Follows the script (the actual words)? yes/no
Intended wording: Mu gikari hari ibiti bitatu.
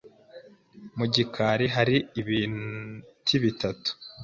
yes